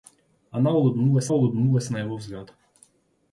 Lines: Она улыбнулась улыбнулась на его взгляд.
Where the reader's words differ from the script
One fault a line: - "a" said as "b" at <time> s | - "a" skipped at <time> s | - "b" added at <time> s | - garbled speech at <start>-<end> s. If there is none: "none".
none